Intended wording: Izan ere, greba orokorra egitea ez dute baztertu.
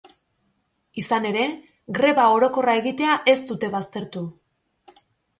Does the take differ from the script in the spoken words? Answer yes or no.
no